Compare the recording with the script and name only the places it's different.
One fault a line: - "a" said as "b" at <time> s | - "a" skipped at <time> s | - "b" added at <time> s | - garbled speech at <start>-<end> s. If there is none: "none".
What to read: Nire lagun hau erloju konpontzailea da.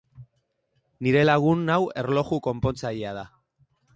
none